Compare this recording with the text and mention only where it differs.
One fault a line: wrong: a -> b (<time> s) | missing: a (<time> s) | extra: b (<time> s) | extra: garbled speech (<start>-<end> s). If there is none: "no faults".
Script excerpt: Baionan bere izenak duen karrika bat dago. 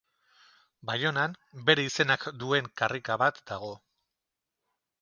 no faults